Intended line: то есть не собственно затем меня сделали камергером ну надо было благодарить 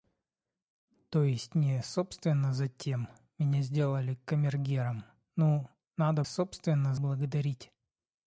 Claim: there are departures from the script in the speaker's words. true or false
true